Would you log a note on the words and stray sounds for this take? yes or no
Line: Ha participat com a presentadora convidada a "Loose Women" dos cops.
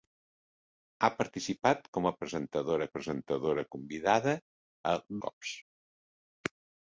yes